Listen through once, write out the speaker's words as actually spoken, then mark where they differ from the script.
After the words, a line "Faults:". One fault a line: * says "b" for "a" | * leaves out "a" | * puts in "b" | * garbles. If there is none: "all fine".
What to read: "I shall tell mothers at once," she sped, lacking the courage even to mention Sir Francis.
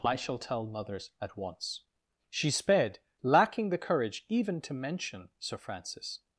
"I shall tell mothers at once," she sped, lacking the courage even to mention Sir Francis.
Faults:
all fine